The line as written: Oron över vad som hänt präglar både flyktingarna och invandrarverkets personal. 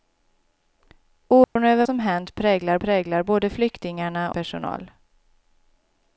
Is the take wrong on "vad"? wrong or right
wrong